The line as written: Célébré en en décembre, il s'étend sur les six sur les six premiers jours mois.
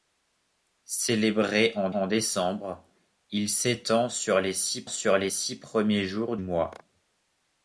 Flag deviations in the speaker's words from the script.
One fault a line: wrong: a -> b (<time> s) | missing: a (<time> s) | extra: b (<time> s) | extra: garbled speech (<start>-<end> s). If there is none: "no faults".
no faults